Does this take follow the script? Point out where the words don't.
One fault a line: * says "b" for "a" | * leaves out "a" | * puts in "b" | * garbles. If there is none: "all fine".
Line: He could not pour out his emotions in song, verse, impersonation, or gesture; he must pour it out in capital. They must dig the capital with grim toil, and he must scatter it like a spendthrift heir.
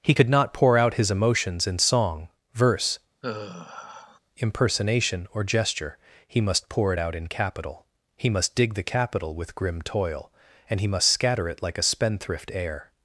* says "He" for "They"